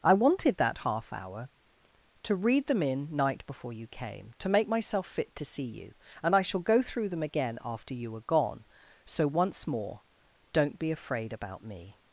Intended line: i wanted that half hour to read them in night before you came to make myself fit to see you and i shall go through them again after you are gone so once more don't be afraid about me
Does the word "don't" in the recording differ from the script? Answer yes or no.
no